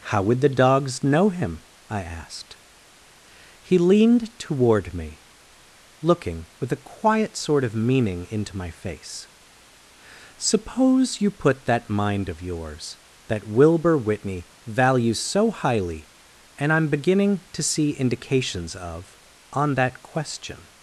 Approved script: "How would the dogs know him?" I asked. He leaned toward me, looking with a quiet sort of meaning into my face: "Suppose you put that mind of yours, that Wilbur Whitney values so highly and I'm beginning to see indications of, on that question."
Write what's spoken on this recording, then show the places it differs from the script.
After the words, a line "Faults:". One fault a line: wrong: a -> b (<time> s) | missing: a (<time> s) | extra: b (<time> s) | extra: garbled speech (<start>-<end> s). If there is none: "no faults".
"How would the dogs know him?" I asked. He leaned toward me, looking with a quiet sort of meaning into my face: "Suppose you put that mind of yours, that Wilbur Whitney values so highly and I'm beginning to see indications of, on that question."
Faults:
no faults